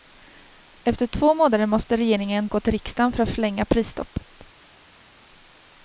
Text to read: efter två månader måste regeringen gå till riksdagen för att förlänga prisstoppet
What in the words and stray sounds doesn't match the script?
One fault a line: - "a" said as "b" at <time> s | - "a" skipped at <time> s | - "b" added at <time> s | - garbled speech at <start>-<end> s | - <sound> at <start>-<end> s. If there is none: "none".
none